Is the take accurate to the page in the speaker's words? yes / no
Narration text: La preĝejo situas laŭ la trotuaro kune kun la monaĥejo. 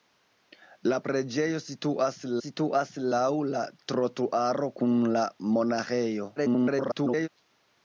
no